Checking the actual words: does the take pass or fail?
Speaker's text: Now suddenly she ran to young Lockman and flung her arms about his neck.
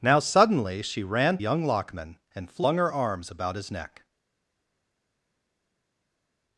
fail